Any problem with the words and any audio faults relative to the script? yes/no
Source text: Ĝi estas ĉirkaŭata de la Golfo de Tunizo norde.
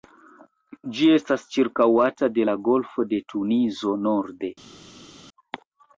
no